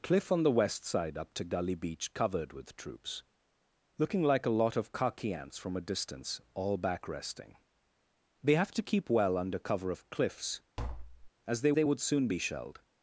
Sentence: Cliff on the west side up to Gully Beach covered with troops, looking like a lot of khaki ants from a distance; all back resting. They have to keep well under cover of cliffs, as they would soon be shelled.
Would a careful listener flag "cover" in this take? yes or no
no